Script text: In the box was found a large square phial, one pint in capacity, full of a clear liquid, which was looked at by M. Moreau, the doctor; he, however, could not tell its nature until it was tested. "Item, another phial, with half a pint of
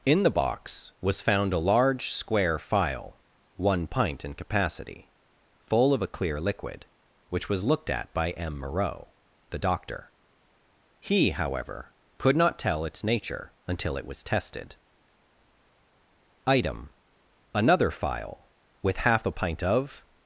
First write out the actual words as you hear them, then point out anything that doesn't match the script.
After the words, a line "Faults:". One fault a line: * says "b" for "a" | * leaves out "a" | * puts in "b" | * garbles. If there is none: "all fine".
In the box was found a large square phial, one pint in capacity, full of a clear liquid, which was looked at by M. Moreau, the doctor; he, however, could not tell its nature until it was tested. "Item, another phial, with half a pint of
Faults:
all fine